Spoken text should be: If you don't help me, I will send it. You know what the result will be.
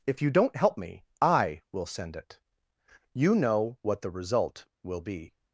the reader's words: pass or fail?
pass